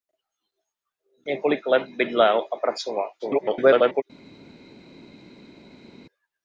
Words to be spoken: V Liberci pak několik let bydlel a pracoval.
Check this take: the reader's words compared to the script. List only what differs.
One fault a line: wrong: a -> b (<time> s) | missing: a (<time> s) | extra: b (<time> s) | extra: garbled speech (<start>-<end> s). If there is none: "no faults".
missing: Liberci pak (1.3 s)
extra: garbled speech (3.2-4.0 s)